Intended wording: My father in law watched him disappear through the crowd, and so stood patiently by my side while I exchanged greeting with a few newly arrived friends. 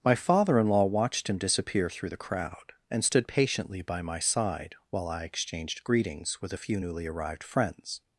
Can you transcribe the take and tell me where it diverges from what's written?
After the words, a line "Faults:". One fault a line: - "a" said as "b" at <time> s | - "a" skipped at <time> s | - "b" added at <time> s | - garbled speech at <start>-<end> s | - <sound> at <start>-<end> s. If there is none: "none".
My father in law watched him disappear through the crowd, and stood patiently by my side while I exchanged greetings with a few newly arrived friends.
Faults:
- "so" skipped at 3.0 s
- "greeting" said as "greetings" at 5.8 s